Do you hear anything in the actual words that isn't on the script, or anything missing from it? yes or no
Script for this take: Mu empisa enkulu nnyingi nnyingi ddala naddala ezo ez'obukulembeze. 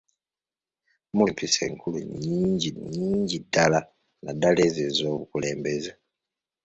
no